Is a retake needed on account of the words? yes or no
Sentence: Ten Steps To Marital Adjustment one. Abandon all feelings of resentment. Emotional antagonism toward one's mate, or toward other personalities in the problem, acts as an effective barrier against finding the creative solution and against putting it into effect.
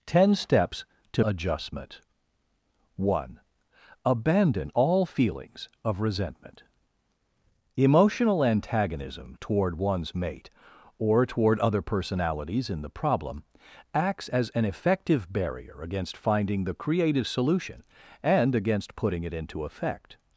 yes